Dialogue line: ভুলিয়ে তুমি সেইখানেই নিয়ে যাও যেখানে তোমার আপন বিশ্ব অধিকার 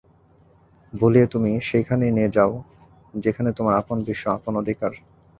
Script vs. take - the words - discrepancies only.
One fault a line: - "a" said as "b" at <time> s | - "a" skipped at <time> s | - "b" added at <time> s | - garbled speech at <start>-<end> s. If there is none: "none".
- "আপন" added at 4.3 s